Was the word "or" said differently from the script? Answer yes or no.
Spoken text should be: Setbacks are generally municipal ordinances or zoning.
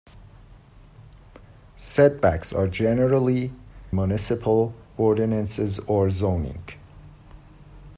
no